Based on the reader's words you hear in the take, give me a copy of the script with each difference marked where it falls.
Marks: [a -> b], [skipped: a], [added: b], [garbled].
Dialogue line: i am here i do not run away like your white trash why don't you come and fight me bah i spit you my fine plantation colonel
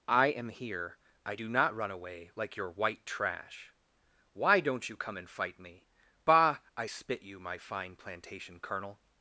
i am here i do not run away like your white trash why don't you come and fight me bah i spit you my fine plantation colonel